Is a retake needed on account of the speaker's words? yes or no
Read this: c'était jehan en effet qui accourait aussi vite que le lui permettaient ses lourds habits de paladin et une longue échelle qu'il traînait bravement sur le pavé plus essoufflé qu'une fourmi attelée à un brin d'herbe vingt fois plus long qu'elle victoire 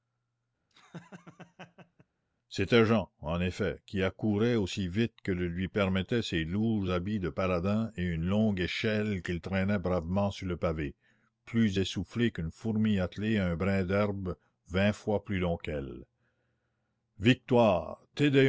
no